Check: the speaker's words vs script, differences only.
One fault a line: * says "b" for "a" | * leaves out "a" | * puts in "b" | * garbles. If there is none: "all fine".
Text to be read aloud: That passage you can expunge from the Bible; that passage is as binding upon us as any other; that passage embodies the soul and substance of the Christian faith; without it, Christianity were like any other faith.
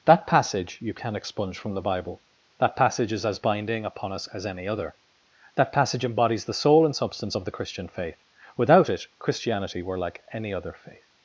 all fine